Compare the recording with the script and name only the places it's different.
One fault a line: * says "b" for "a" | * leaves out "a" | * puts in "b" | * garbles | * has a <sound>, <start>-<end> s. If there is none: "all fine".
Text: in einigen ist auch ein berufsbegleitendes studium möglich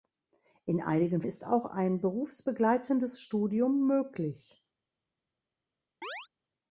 * has a chirp, 6.0-6.3 s